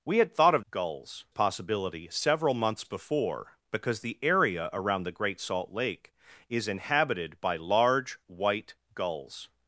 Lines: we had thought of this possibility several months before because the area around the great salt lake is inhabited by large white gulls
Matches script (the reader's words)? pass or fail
fail